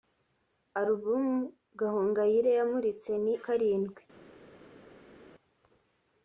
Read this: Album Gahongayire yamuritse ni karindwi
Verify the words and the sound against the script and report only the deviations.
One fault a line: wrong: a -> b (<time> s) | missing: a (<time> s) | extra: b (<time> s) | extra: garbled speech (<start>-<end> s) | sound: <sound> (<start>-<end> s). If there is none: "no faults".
no faults